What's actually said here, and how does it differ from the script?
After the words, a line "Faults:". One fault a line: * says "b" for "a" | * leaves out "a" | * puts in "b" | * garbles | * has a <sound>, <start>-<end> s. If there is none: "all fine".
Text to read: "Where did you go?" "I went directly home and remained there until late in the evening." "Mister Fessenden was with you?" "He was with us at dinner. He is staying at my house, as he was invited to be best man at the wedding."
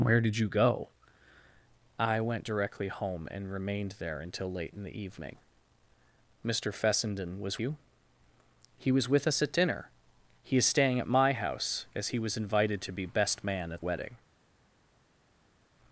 "Where did you go?" "I went directly home and remained there until late in the evening." "Mister Fessenden was you?" "He was with us at dinner. He is staying at my house, as he was invited to be best man at wedding."
Faults:
* leaves out "with"
* leaves out "the"